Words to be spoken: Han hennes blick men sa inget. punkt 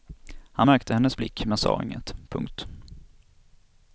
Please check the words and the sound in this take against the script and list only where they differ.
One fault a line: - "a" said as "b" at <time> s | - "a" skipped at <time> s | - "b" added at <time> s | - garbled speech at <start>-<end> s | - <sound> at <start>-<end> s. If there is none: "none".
- "märkte" added at 0.6 s